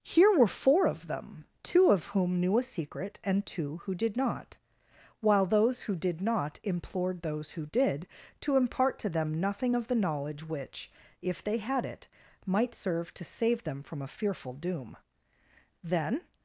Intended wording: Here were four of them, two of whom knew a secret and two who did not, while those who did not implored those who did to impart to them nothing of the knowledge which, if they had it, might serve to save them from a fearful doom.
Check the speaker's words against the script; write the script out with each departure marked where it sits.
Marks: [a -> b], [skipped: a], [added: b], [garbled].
Here were four of them, two of whom knew a secret and two who did not, while those who did not implored those who did to impart to them nothing of the knowledge which, if they had it, might serve to save them from a fearful doom. [added: Then]